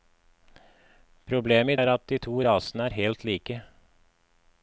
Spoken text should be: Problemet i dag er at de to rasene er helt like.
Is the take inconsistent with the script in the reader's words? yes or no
yes